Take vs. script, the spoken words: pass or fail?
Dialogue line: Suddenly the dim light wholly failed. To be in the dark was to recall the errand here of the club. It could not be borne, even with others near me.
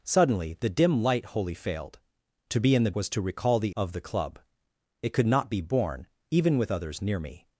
fail